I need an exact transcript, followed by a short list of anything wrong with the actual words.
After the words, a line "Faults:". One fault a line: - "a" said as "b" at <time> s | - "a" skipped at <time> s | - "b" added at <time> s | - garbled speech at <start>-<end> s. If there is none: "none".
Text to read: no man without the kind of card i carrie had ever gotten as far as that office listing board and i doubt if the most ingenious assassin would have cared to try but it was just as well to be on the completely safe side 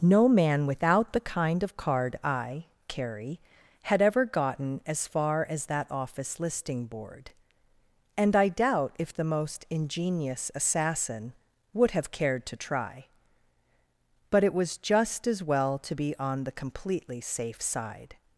no man without the kind of card i carrie had ever gotten as far as that office listing board and i doubt if the most ingenious assassin would have cared to try but it was just as well to be on the completely safe side
Faults:
none